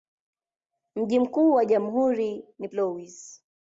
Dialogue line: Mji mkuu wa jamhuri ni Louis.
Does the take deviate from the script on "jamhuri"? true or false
false